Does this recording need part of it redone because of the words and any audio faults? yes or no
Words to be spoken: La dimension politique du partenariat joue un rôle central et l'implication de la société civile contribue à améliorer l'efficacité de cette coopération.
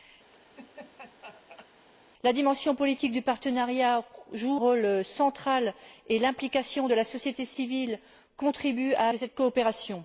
yes